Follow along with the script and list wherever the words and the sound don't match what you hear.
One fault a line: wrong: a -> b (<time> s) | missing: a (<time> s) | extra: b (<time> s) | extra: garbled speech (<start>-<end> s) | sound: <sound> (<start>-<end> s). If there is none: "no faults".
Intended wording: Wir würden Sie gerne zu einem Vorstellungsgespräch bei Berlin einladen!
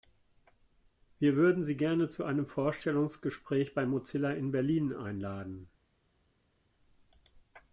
extra: Mozilla in (3.9 s)